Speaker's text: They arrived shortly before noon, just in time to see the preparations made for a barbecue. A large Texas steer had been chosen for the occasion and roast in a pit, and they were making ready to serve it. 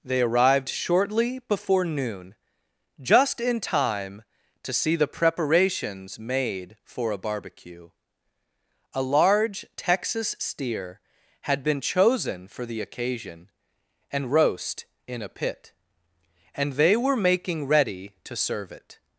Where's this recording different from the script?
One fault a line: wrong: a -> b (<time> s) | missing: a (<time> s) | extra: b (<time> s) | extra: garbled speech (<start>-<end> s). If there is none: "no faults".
no faults